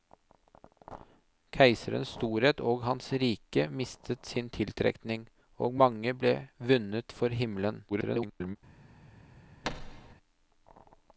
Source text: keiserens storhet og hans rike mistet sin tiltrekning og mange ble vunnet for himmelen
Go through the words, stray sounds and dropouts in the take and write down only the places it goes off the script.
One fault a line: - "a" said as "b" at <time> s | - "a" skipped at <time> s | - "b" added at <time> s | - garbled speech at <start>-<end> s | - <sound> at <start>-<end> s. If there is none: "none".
- garbled speech at 7.9-8.6 s
- thud at 9.6-10.1 s